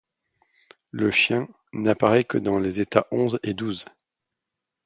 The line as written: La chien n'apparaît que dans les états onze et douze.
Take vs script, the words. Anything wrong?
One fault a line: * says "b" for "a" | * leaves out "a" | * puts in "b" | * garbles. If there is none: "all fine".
* says "Le" for "La"